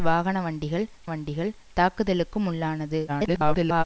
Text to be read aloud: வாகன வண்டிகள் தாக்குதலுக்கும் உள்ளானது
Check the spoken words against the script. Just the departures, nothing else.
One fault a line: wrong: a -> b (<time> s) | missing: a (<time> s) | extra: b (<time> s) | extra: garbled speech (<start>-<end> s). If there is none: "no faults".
extra: வண்டிகள் (1.1 s)
extra: garbled speech (3.1-3.8 s)